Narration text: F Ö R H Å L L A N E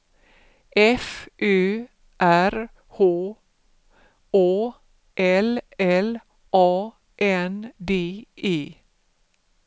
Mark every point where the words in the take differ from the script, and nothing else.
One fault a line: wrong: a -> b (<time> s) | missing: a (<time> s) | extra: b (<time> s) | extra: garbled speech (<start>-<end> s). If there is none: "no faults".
extra: D (7.8 s)